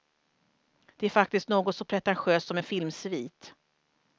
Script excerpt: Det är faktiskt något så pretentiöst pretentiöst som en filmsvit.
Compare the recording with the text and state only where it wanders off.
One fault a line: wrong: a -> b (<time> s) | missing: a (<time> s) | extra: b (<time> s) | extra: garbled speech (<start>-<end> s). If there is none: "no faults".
missing: pretentiöst (2.5 s)